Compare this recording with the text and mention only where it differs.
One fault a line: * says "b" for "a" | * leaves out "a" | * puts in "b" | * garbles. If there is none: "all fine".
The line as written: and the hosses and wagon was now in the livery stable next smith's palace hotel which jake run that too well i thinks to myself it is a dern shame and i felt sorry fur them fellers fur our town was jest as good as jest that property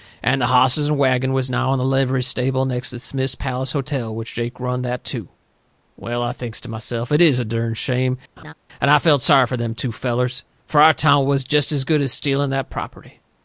* puts in "to"
* puts in "two"
* says "stealing" for "jest"